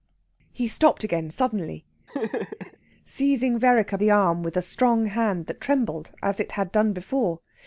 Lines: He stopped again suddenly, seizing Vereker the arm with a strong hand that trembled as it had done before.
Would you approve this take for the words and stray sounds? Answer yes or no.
no